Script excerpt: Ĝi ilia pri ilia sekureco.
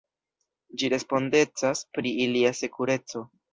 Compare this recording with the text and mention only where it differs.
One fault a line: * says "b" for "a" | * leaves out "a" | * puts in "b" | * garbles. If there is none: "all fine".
* says "respondecas" for "ilia"